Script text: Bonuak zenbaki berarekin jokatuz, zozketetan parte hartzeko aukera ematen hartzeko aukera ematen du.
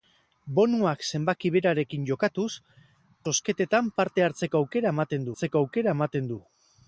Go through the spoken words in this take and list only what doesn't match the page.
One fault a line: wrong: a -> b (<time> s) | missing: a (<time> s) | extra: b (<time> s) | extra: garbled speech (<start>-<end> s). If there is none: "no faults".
no faults